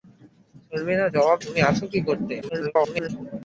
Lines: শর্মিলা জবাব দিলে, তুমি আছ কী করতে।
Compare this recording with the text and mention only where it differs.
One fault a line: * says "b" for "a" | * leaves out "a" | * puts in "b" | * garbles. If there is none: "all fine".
* leaves out "দিলে"
* garbles